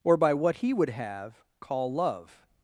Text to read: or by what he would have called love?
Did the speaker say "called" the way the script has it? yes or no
no